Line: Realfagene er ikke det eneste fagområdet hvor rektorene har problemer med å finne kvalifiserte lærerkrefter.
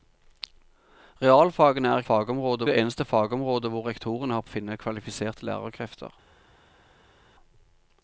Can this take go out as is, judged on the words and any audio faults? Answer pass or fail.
fail